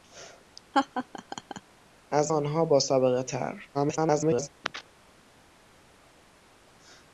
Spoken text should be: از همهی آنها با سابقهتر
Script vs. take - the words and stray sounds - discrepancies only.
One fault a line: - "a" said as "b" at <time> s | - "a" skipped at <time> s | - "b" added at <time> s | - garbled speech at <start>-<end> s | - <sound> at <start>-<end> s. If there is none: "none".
- laugh at 0.7-1.6 s
- "همهی" skipped at 2.3 s
- garbled speech at 3.7-4.5 s